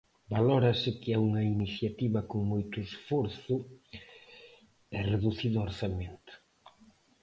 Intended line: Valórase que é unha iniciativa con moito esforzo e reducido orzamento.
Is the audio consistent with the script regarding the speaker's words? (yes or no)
yes